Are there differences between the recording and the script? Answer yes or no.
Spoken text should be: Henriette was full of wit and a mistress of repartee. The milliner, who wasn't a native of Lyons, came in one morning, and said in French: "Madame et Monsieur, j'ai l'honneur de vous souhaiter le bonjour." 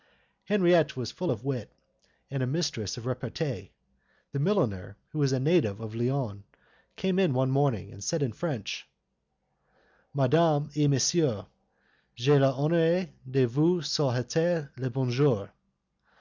yes